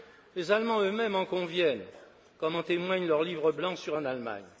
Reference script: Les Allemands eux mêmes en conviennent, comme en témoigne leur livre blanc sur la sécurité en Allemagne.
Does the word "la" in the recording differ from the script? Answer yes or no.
yes